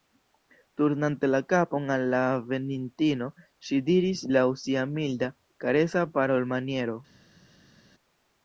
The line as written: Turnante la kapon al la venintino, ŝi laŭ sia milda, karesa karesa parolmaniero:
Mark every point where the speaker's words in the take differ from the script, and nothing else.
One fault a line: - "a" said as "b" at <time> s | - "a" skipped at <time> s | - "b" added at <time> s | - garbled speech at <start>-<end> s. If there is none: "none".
- "diris" added at 3.9 s
- "karesa" skipped at 6.1 s